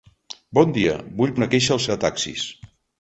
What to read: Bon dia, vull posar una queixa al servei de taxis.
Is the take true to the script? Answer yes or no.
no